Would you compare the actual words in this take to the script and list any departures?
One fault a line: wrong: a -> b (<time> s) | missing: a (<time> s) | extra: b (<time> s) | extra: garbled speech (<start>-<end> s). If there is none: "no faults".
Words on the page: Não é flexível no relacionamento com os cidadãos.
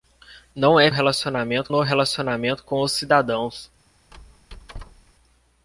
wrong: flexível -> relacionamento (0.9 s)